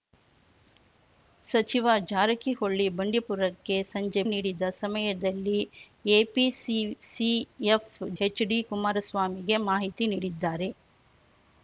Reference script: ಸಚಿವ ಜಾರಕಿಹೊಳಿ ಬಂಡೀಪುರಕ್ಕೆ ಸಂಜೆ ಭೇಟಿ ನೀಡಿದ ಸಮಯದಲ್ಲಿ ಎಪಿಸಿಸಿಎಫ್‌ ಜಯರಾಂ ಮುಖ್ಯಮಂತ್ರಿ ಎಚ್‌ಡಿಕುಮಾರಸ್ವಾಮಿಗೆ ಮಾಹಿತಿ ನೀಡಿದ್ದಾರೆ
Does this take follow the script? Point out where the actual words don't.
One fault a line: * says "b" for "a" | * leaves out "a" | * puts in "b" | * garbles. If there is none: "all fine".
* leaves out "ಭೇಟಿ"
* leaves out "ಜಯರಾಂ ಮುಖ್ಯಮಂತ್ರಿ"